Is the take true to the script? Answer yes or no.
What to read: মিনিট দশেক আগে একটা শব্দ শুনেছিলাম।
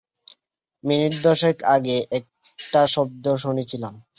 yes